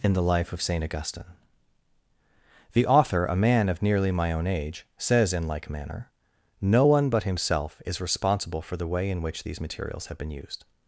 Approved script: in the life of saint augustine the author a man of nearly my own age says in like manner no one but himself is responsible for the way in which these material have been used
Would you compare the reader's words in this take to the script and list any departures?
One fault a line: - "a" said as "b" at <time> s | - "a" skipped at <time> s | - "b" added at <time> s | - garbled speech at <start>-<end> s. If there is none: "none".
- "material" said as "materials" at 9.6 s